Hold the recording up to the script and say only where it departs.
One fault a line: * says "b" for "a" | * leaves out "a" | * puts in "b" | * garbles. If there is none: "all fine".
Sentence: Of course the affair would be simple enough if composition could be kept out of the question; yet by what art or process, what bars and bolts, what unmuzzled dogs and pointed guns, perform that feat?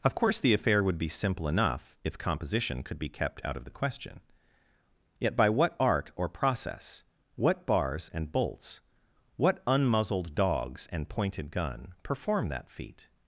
* says "gun" for "guns"